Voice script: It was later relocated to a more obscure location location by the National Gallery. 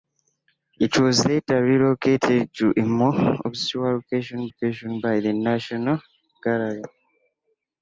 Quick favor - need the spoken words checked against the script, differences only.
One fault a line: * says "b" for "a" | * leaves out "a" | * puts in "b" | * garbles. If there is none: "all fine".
all fine